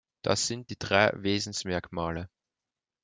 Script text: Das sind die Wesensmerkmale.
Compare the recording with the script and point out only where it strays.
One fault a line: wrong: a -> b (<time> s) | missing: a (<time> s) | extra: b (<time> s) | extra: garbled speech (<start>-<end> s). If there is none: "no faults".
extra: drei (0.8 s)